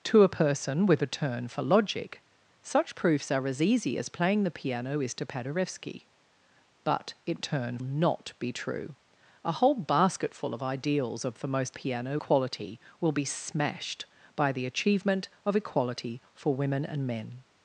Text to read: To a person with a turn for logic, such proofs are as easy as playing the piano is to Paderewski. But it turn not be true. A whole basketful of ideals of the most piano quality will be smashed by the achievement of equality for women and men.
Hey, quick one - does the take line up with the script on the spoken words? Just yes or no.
yes